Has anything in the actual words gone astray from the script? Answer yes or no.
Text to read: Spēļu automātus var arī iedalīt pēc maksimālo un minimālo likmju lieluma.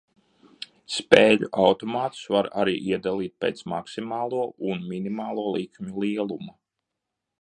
no